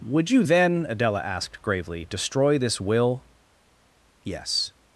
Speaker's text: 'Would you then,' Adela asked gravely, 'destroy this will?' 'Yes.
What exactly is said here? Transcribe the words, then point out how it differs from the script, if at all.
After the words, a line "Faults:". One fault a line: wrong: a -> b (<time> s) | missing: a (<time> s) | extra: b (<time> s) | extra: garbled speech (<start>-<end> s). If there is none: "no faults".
'Would you then,' Adela asked gravely, 'destroy this will?' 'Yes.
Faults:
no faults